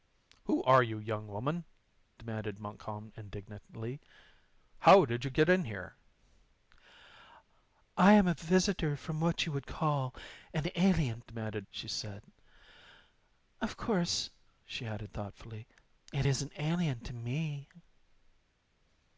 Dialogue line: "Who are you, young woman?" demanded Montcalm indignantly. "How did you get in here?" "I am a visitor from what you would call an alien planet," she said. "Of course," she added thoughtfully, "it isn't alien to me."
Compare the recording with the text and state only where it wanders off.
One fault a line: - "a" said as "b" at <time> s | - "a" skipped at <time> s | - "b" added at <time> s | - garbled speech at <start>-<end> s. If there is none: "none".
- "planet" said as "demanded" at 11.3 s